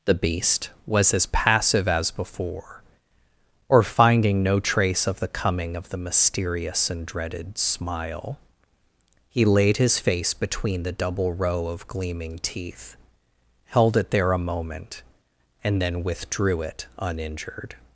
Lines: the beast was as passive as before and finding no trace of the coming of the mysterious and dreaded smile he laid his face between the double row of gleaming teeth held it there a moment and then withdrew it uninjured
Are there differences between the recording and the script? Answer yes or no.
yes